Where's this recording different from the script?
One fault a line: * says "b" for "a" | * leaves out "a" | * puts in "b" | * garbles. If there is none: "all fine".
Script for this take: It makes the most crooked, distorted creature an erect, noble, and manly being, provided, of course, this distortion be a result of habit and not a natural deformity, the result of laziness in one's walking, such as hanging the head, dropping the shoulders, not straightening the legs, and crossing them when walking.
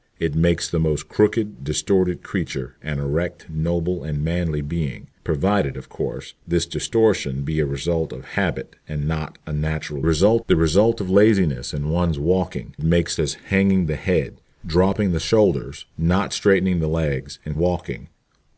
* says "result" for "deformity"
* says "makes" for "such"
* leaves out "crossing them when"